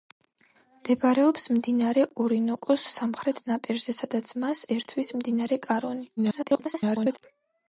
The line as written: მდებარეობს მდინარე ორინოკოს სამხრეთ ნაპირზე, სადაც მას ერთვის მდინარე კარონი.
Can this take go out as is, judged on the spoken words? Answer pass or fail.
fail